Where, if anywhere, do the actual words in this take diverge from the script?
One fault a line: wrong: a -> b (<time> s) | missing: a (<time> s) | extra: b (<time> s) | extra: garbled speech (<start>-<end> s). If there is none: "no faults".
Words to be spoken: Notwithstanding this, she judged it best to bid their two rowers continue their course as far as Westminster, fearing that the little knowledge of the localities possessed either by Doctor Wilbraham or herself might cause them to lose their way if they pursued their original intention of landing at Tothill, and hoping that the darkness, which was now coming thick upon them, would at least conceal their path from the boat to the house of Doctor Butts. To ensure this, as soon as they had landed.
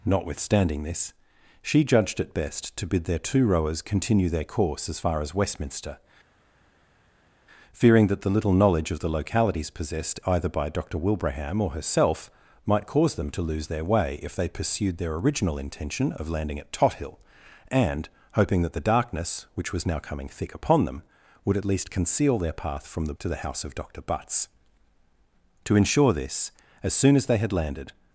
missing: boat (23.1 s)